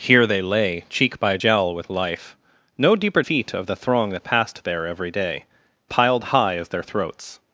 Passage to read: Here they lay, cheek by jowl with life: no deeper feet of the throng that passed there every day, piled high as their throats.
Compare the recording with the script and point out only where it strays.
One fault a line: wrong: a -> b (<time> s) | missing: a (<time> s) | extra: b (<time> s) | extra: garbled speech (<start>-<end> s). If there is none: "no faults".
no faults